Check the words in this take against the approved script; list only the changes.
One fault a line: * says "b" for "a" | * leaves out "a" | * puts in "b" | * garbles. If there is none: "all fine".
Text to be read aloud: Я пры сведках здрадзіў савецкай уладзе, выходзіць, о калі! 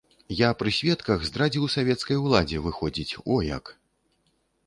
* says "як" for "калі"